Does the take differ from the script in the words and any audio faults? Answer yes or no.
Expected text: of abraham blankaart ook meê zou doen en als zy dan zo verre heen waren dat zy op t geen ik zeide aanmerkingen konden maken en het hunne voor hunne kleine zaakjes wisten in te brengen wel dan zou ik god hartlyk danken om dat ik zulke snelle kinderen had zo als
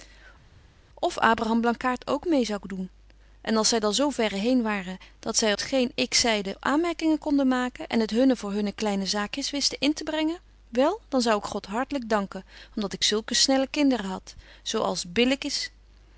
yes